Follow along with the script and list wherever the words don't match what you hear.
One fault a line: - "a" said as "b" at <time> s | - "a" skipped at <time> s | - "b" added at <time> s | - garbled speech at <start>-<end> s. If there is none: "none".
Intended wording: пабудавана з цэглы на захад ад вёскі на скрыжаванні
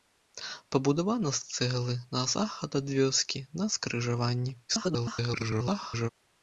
- garbled speech at 4.7-6.1 s